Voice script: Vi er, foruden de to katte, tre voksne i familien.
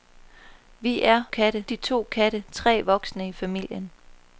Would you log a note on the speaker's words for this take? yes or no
yes